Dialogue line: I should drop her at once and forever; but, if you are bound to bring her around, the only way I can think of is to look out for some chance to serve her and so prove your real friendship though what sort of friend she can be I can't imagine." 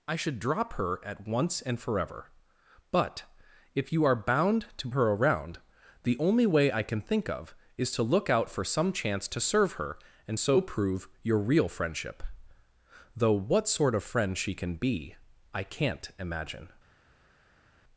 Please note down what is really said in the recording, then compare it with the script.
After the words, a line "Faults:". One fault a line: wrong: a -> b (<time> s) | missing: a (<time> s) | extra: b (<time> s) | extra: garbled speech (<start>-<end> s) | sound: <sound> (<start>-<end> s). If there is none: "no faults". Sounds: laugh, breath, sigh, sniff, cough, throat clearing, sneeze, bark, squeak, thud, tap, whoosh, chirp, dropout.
I should drop her at once and forever; but, if you are bound to her around, the only way I can think of is to look out for some chance to serve her and so prove your real friendship though what sort of friend she can be I can't imagine."
Faults:
missing: bring (4.9 s)